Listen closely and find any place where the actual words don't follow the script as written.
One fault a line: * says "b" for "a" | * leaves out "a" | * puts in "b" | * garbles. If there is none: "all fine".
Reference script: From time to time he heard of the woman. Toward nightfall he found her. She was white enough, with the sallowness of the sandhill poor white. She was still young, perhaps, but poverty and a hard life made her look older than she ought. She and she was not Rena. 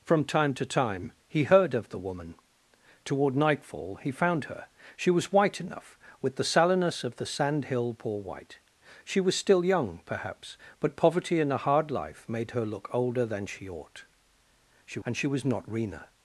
all fine